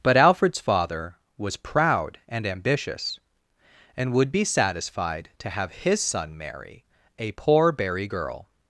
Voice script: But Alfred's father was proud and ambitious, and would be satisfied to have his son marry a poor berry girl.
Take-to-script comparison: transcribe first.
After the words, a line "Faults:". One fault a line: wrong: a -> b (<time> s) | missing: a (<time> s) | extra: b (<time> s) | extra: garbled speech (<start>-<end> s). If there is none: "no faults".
But Alfred's father was proud and ambitious, and would be satisfied to have his son marry a poor berry girl.
Faults:
no faults